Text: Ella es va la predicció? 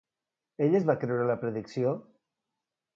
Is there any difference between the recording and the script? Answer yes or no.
yes